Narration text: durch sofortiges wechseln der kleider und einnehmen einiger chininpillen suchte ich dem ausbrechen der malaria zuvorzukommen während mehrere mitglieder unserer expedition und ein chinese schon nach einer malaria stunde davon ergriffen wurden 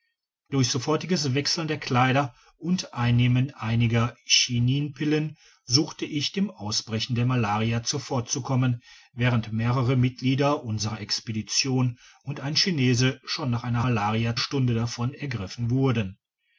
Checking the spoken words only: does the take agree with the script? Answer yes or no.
yes